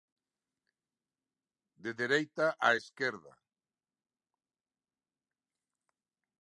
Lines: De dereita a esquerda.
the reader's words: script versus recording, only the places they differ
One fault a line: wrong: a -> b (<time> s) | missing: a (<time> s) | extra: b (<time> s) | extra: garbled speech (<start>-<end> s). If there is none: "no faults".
no faults